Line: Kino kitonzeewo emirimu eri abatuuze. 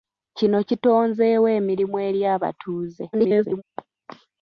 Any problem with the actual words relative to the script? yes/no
yes